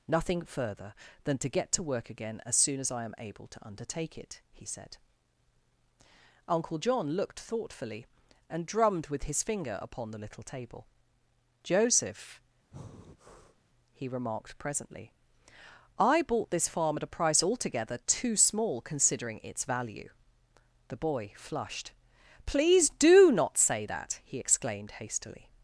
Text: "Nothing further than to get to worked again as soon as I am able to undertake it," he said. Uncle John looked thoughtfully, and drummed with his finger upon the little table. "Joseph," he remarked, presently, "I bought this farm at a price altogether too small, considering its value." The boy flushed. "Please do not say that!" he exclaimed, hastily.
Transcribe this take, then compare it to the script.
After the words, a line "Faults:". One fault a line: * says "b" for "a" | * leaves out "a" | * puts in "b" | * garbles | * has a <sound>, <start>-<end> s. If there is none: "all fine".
"Nothing further than to get to work again as soon as I am able to undertake it," he said. Uncle John looked thoughtfully, and drummed with his finger upon the little table. "Joseph," he remarked, presently, "I bought this farm at a price altogether too small, considering its value." The boy flushed. "Please do not say that!" he exclaimed, hastily.
Faults:
* says "work" for "worked"
* has a breath, 12.7-13.6 s